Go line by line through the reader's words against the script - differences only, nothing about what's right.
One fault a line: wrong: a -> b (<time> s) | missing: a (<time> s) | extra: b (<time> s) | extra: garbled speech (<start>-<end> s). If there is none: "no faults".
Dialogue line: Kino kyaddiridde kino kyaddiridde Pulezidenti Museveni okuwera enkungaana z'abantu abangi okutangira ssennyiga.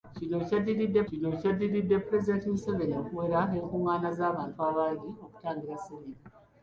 no faults